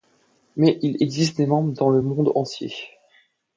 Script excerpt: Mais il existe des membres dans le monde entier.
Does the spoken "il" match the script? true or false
true